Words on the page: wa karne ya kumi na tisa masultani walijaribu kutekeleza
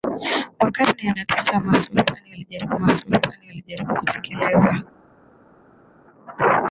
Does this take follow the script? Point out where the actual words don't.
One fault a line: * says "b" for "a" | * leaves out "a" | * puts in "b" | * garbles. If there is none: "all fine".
* leaves out "kumi"
* puts in "masultani walijaribu"